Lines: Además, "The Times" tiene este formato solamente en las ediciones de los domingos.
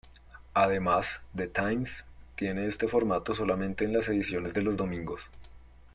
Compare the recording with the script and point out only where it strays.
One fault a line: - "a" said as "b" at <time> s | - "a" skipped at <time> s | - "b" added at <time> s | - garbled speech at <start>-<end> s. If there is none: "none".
none